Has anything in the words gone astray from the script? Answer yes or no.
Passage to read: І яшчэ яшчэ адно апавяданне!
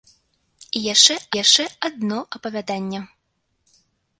no